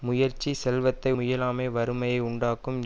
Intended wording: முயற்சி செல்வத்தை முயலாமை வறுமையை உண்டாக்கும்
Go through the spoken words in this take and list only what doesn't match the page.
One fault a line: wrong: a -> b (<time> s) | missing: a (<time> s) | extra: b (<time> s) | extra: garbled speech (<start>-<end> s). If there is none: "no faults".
no faults